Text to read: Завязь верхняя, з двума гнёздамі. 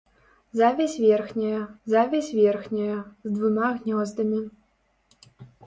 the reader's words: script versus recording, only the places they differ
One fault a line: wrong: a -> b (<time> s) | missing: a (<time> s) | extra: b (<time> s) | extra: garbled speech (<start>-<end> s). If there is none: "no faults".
extra: завязь верхняя (1.9 s)